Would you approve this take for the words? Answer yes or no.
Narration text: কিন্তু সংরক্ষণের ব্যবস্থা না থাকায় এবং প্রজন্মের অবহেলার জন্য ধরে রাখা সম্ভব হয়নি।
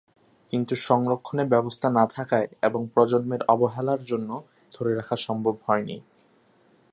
yes